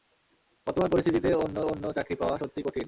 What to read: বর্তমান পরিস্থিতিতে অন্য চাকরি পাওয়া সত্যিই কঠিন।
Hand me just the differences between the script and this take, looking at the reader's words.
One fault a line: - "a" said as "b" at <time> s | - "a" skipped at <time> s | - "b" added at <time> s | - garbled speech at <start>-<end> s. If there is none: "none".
- "অন্য" added at 1.6 s